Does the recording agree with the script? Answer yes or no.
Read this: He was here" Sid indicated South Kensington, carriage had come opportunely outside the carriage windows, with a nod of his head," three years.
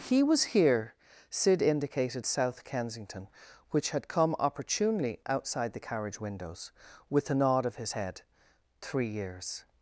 no